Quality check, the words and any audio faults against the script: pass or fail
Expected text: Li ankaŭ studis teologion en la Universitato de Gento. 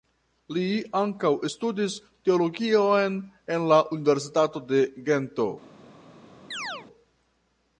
fail